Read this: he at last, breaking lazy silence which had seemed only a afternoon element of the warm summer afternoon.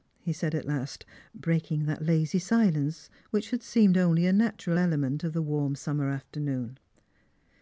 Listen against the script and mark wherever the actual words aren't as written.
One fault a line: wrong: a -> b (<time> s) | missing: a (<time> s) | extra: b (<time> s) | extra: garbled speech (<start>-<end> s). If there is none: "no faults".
extra: said (0.3 s)
extra: that (1.9 s)
wrong: afternoon -> natural (4.3 s)